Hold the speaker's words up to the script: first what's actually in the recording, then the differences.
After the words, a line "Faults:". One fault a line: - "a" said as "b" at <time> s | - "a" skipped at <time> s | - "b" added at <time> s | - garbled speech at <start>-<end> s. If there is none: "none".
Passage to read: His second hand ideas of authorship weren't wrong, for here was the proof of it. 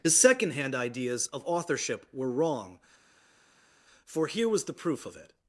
His second hand ideas of authorship were wrong, for here was the proof of it.
Faults:
- "weren't" said as "were" at 2.1 s